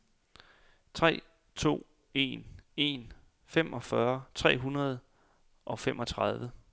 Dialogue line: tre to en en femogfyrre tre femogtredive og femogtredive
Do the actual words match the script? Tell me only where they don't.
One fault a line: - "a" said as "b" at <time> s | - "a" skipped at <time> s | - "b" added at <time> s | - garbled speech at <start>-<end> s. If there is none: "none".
- "femogtredive" said as "hundrede" at 4.6 s